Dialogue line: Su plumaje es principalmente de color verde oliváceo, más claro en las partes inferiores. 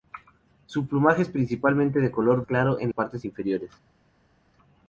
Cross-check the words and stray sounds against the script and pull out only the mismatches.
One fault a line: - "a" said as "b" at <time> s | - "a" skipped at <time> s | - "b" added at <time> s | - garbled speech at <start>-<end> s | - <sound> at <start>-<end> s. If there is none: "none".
- "verde oliváceo más" skipped at 2.5 s
- "las" skipped at 2.9 s